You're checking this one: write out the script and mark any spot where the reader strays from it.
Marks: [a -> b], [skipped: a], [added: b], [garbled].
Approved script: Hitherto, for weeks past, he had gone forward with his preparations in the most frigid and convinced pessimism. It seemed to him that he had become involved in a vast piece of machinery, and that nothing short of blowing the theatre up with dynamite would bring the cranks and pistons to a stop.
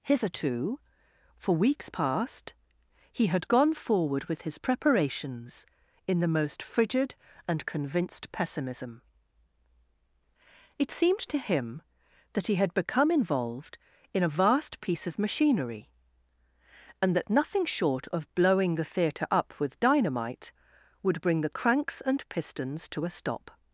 Hitherto, for weeks past, he had gone forward with his preparations in the most frigid and convinced pessimism. It seemed to him that he had become involved in a vast piece of machinery, and that nothing short of blowing the theatre up with dynamite would bring the cranks and pistons to a stop.